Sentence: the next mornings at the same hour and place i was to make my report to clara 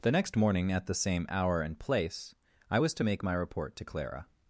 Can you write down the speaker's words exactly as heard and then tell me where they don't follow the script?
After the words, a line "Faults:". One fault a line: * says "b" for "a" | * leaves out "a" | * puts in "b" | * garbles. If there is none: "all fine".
the next morning at the same hour and place i was to make my report to clara
Faults:
* says "morning" for "mornings"